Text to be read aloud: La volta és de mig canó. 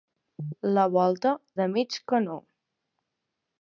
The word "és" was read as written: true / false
false